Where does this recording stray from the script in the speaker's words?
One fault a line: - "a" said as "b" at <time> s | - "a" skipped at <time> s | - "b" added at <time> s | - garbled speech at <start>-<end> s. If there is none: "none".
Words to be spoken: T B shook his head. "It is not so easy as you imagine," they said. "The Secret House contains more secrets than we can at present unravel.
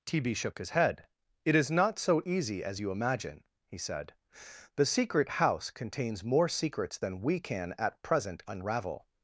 - "they" said as "he" at 3.7 s